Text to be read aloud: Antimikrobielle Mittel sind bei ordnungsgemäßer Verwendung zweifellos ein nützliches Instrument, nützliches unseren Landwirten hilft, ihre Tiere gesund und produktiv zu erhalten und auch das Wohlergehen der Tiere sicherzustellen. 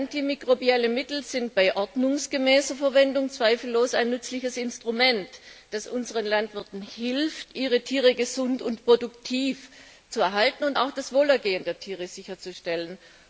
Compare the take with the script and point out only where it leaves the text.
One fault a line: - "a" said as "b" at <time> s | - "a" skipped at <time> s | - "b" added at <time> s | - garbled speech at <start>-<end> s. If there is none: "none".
- "nützliches" said as "das" at 5.7 s